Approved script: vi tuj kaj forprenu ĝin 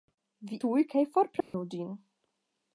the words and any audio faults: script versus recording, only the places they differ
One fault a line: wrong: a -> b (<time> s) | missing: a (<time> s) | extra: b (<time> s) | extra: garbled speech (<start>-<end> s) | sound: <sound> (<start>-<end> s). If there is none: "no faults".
sound: dropout (1.4-1.5 s)